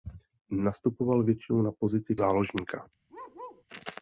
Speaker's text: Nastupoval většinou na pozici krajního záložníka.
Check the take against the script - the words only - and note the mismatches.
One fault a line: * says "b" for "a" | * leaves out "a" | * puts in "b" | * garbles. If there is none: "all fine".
* leaves out "krajního"